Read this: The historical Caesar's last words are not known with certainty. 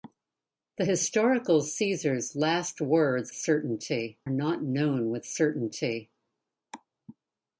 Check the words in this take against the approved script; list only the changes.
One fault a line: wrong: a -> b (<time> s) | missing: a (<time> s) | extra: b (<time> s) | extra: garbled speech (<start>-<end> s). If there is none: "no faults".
wrong: are -> certainty (3.3 s)